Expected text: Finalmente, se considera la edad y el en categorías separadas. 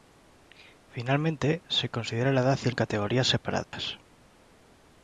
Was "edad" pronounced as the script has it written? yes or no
yes